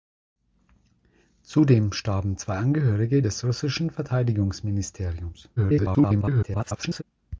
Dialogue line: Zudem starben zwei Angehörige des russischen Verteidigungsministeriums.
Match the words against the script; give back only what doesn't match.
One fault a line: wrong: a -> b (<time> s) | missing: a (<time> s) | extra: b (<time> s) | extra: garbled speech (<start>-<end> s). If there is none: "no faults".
extra: garbled speech (5.6-7.0 s)